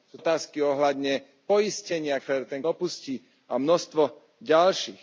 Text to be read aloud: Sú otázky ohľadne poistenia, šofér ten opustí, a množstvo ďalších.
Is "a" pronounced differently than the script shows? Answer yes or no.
no